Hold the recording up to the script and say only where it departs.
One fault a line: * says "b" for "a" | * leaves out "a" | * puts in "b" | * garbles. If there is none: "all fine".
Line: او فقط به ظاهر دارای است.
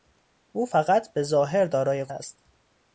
all fine